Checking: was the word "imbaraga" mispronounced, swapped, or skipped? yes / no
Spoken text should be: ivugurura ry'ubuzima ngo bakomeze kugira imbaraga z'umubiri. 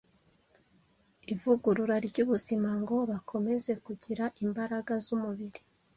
no